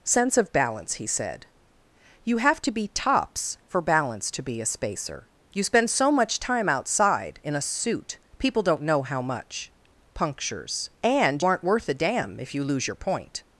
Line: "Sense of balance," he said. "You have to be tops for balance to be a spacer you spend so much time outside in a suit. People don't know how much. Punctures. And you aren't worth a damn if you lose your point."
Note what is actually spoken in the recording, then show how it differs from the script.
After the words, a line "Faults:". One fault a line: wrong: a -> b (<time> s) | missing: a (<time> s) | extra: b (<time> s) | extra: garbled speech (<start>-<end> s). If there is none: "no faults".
"Sense of balance," he said. "You have to be tops for balance to be a spacer you spend so much time outside in a suit. People don't know how much. Punctures. And aren't worth a damn if you lose your point."
Faults:
missing: you (11.4 s)